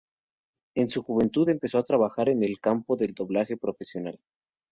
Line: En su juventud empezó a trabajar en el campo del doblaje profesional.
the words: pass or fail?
pass